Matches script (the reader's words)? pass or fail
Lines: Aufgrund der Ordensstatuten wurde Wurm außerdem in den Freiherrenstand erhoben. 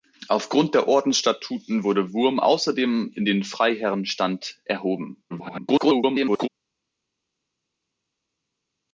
fail